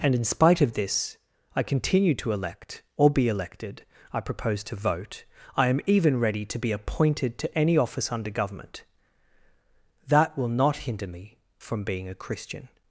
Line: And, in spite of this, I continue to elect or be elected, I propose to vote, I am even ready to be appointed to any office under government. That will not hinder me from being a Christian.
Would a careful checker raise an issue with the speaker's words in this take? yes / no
no